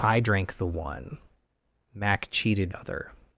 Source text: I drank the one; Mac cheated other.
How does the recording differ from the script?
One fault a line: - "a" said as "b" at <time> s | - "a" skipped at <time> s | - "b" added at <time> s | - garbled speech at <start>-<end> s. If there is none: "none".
none